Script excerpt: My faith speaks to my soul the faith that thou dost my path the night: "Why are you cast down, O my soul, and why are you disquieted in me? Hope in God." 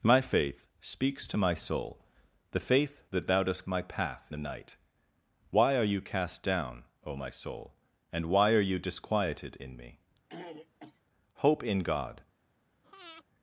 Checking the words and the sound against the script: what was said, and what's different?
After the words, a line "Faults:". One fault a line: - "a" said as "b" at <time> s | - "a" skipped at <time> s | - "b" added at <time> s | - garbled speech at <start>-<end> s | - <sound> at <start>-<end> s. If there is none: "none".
My faith speaks to my soul the faith that thou dost my path the night: "Why are you cast down, O my soul, and why are you disquieted in me? Hope in God."
Faults:
- throat clearing at 10.3-11.0 s
- breath at 12.8-13.2 s